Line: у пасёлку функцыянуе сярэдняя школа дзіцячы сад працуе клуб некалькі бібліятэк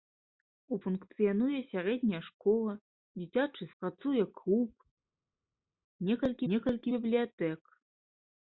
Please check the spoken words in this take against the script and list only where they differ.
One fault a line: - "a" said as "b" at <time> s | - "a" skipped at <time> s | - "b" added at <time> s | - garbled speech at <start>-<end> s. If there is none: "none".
- "пасёлку" skipped at 0.8 s
- "сад" skipped at 3.6 s
- "некалькі" added at 6.5 s